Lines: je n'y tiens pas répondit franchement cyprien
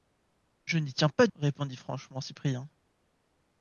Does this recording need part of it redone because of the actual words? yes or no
no